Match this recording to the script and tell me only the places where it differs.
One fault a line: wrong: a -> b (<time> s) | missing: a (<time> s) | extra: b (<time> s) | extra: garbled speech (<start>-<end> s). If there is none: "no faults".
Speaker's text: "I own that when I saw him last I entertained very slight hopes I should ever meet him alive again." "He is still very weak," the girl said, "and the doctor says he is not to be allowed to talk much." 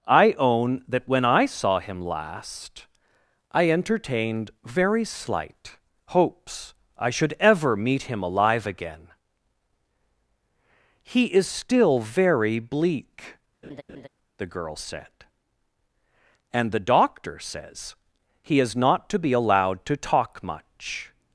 wrong: weak -> bleak (12.6 s)